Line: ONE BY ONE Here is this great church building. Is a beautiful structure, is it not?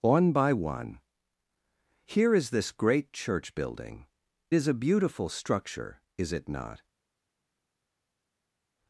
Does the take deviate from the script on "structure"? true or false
false